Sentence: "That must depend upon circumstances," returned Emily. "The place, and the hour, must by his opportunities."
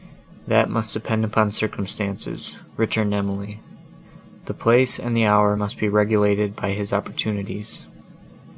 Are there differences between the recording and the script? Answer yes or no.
yes